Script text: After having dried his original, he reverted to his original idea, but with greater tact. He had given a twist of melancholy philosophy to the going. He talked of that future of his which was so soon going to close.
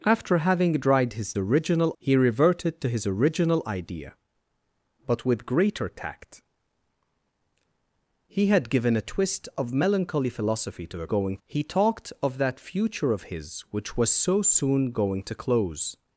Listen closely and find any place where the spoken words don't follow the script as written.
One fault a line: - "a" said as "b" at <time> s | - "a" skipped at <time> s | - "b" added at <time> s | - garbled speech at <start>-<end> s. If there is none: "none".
none